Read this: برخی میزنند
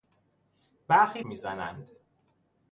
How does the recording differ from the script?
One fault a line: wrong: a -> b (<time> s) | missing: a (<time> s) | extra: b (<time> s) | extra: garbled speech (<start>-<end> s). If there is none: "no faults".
no faults